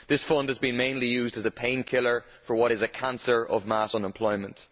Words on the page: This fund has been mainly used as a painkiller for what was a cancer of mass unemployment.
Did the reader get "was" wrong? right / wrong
wrong